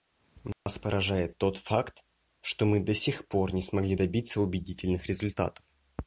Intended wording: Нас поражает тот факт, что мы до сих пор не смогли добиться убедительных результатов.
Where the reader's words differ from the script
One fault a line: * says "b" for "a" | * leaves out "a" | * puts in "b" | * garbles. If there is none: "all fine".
all fine